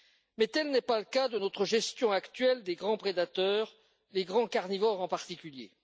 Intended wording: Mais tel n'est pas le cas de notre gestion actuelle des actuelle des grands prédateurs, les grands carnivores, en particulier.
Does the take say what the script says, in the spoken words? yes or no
no